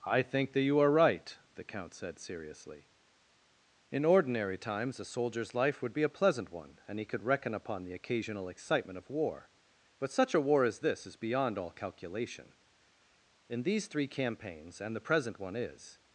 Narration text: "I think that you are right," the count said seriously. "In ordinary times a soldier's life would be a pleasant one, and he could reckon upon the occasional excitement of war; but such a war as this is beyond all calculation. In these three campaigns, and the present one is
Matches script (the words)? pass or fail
pass